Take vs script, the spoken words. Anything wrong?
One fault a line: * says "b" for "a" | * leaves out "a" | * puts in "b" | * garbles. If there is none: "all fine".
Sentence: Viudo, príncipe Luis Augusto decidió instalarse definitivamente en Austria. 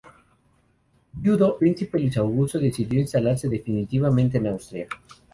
all fine